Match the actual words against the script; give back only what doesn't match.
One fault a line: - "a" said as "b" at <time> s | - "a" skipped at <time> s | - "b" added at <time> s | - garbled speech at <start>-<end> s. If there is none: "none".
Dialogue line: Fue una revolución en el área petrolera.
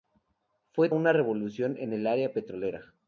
none